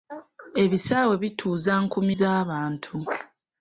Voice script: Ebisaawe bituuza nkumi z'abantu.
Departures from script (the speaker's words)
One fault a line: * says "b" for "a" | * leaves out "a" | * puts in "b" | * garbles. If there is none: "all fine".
all fine